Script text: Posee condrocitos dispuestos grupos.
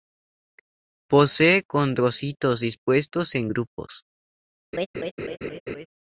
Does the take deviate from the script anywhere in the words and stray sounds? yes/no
yes